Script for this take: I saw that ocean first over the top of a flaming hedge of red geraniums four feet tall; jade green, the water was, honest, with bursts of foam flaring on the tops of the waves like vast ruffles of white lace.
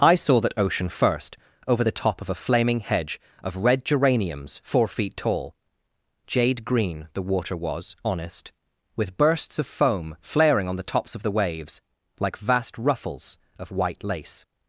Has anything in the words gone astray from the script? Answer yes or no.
no